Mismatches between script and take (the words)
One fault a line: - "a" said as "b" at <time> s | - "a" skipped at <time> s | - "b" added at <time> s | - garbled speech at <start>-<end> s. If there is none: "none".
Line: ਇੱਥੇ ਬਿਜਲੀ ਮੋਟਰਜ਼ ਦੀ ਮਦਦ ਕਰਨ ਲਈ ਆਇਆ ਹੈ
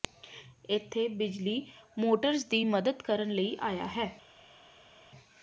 none